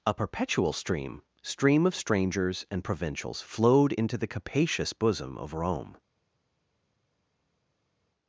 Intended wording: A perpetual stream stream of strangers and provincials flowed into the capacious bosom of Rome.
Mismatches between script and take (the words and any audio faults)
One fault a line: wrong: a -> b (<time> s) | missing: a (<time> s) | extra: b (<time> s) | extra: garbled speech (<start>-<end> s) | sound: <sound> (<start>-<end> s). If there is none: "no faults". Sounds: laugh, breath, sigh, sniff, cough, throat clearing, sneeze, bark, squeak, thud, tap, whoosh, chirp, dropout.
no faults